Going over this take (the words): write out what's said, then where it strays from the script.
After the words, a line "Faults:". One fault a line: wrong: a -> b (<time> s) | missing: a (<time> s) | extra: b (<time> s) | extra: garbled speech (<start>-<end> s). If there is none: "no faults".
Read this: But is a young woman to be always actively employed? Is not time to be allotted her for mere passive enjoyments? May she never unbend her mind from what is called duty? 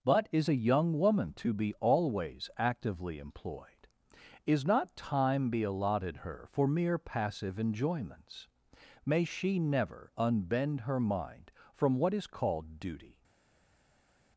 But is a young woman to be always actively employed? Is not time be allotted her for mere passive enjoyments? May she never unbend her mind from what is called duty?
Faults:
missing: to (5.5 s)